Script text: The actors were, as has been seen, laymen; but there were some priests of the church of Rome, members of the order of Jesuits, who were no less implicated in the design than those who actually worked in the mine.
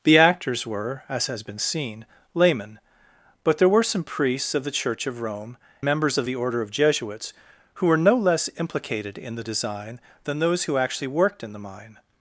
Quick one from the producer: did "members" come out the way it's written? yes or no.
yes